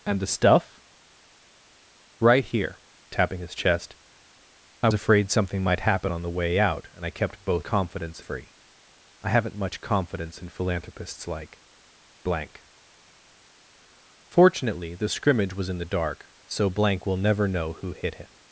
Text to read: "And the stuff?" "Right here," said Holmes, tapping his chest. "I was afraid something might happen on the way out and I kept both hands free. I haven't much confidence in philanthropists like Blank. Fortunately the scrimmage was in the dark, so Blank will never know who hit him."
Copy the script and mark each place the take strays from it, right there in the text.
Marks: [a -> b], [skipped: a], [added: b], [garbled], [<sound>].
"And the stuff?" "Right here," [skipped: said Holmes,] tapping his chest. "I [skipped: was] afraid something might happen on the way out and I kept both [hands -> confidence] free. I haven't much confidence in philanthropists like Blank. Fortunately the scrimmage was in the dark, so Blank will never know who hit him."